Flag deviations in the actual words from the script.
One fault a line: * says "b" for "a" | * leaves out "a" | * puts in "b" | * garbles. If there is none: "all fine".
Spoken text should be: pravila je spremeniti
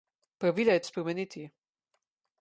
all fine